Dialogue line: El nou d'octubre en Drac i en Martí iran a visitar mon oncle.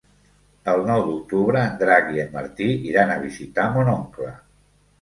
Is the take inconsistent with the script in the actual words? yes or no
no